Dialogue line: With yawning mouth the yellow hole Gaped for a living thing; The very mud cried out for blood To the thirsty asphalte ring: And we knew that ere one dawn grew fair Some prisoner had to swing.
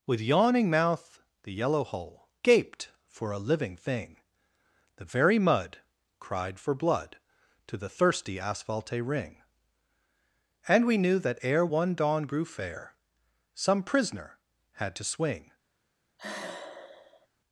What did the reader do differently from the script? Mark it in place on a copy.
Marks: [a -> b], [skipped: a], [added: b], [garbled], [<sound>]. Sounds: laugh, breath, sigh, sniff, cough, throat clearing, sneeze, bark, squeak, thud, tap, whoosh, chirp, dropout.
With yawning mouth the yellow hole Gaped for a living thing; The very mud cried [skipped: out] for blood To the thirsty asphalte ring: And we knew that ere one dawn grew fair Some prisoner had to swing. [sigh]